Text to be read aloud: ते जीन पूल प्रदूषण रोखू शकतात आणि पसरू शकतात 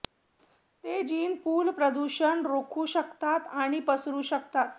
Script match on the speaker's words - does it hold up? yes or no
yes